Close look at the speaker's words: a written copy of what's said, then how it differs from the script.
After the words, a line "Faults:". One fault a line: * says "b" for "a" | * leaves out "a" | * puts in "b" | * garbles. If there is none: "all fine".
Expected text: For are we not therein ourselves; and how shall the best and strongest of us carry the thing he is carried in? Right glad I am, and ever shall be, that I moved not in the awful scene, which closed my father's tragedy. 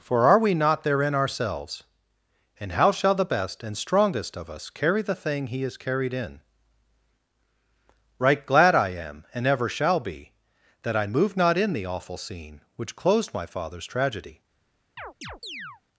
For are we not therein ourselves; and how shall the best and strongest of us carry the thing he is carried in? Right glad I am, and ever shall be, that I moved not in the awful scene, which closed my father's tragedy.
Faults:
all fine